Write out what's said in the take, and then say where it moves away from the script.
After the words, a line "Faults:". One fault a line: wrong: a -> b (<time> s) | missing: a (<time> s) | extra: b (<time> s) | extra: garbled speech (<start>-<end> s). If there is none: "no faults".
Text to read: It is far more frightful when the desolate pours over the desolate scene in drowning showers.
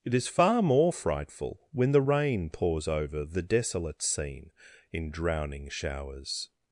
It is far more frightful when the rain pours over the desolate scene in drowning showers.
Faults:
wrong: desolate -> rain (2.0 s)